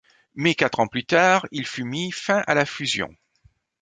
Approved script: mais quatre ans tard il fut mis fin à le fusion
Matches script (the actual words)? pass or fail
fail